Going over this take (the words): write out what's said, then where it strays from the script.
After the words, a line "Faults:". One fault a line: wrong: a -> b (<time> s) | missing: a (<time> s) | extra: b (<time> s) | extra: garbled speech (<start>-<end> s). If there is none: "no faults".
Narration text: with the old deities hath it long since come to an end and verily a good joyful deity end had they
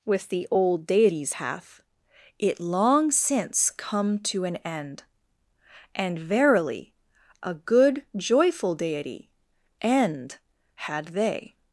with the old deities hath it long since come to an end and verily a good joyful deity end had they
Faults:
no faults